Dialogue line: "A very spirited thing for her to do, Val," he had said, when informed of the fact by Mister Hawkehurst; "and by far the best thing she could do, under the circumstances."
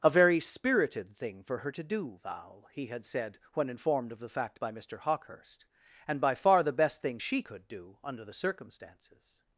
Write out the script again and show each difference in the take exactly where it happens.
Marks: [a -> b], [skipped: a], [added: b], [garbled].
"A very spirited thing for her to do, Val," he had said, when informed of the fact by Mister Hawkehurst; "and by far the best thing she could do, under the circumstances."